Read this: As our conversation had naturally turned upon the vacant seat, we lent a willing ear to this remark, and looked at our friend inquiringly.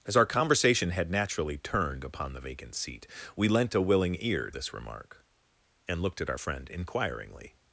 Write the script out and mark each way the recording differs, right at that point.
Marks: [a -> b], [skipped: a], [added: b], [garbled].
As our conversation had naturally turned upon the vacant seat, we lent a willing ear [skipped: to] this remark, and looked at our friend inquiringly.